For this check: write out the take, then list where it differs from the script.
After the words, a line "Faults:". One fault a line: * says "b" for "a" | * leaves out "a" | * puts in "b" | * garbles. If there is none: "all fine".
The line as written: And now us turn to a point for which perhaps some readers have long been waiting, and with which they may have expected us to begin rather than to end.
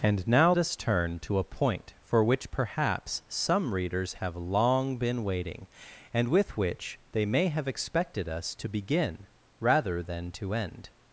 And now us turn to a point for which perhaps some readers have long been waiting, and with which they may have expected us to begin rather than to end.
Faults:
all fine